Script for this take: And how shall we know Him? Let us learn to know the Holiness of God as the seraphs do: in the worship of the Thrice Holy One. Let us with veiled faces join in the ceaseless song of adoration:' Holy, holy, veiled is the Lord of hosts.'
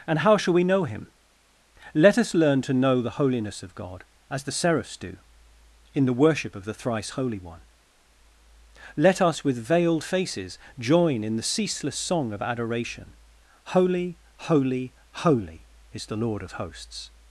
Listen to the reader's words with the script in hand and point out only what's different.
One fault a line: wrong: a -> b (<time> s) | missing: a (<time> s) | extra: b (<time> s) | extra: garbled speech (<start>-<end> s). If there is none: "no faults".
wrong: veiled -> holy (15.1 s)